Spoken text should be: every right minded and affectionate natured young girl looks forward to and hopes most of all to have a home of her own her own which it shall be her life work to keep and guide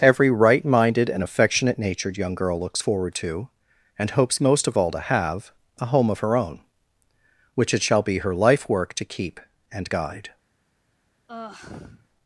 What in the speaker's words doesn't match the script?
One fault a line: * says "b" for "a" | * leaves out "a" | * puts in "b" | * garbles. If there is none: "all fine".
* leaves out "her own"